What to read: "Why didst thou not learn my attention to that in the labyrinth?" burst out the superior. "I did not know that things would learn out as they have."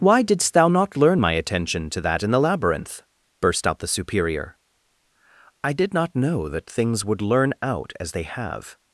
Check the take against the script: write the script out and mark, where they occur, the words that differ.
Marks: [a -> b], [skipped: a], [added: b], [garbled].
"Why didst thou not learn my attention to that in the labyrinth?" burst out the superior. "I did not know that things would learn out as they have."